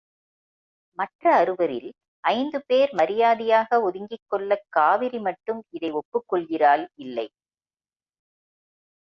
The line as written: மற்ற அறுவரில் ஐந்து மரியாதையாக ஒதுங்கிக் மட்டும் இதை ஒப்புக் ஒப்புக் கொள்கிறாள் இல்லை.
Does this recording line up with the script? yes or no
no